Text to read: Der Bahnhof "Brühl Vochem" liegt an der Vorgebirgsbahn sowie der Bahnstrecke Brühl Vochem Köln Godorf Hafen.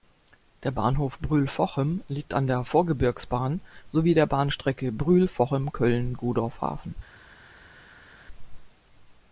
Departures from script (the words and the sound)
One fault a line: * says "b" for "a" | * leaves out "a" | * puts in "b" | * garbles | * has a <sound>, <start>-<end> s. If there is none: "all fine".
all fine